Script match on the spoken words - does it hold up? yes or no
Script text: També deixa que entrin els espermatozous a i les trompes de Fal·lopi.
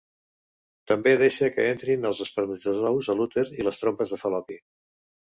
no